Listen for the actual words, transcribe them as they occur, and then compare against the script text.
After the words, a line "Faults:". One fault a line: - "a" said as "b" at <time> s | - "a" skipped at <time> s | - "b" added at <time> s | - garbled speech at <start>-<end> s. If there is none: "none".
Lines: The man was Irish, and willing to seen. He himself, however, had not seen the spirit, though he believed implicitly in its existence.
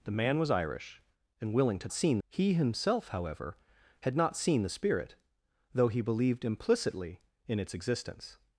The man was Irish, and willing to seen. He himself, however, had not seen the spirit, though he believed implicitly in its existence.
Faults:
none